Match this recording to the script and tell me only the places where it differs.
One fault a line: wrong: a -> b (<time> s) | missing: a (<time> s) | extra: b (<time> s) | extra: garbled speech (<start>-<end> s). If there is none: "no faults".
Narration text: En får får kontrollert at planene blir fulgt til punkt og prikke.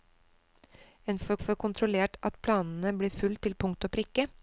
no faults